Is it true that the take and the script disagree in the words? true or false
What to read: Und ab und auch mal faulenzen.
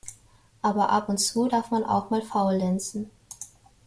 true